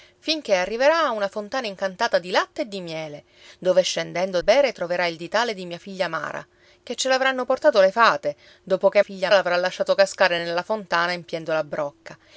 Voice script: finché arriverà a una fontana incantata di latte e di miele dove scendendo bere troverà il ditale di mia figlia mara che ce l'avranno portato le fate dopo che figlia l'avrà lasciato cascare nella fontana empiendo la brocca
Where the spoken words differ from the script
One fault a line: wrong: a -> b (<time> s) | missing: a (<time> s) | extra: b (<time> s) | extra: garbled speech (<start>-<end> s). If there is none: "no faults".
no faults